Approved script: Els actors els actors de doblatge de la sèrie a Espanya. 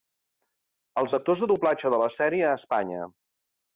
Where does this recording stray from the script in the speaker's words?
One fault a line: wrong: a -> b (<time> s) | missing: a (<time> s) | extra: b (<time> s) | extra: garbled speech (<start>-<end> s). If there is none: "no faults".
missing: els actors (1.4 s)